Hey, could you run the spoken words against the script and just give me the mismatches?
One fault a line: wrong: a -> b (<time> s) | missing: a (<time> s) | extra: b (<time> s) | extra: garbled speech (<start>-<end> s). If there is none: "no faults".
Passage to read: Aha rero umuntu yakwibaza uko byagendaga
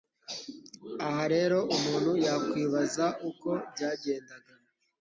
no faults